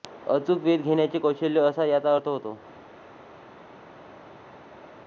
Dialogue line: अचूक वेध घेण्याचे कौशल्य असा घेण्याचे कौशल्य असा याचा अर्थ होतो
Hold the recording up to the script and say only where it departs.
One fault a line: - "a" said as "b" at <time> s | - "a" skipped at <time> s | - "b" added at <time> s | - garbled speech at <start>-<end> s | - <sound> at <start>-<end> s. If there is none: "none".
- "घेण्याचे कौशल्य असा" skipped at 1.9 s